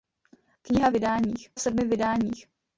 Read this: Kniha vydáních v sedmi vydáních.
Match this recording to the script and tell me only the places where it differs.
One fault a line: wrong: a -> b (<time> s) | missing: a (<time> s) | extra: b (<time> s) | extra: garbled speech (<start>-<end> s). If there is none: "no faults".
no faults